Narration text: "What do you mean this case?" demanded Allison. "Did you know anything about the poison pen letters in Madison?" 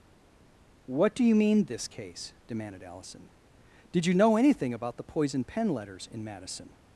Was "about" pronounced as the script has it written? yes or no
yes